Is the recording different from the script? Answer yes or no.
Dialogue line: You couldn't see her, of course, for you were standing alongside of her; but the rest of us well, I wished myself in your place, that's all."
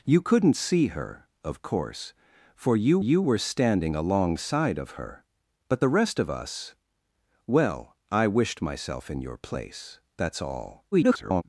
yes